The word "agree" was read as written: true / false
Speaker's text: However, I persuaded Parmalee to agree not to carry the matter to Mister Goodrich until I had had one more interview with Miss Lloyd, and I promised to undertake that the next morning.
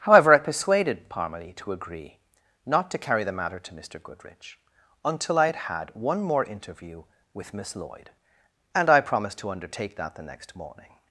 true